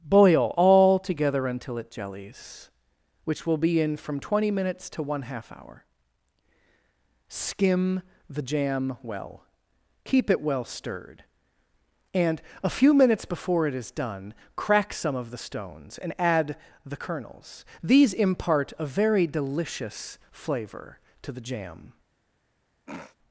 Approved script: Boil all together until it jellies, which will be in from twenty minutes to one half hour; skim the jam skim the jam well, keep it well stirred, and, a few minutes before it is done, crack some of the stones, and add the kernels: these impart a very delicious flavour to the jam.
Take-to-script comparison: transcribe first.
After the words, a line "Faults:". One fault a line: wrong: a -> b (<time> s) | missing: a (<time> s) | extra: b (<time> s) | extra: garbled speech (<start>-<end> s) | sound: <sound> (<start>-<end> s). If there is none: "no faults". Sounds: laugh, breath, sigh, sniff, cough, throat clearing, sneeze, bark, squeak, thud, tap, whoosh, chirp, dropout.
Boil all together until it jellies, which will be in from twenty minutes to one half hour; skim the jam well, keep it well stirred, and, a few minutes before it is done, crack some of the stones, and add the kernels: these impart a very delicious flavour to the jam.
Faults:
missing: skim the jam (9.0 s)
sound: throat clearing (22.9-23.2 s)